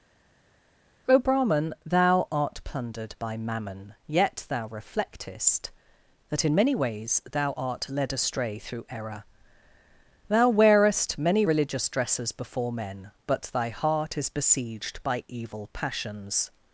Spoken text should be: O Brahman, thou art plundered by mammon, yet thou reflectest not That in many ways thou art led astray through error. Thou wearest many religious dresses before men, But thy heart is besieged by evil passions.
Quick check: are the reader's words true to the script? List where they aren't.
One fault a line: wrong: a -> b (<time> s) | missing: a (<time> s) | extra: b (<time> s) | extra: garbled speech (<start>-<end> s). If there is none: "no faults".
missing: not (5.7 s)